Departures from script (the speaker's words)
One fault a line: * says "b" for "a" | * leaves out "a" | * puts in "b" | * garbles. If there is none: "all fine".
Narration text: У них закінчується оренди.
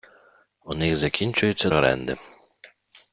all fine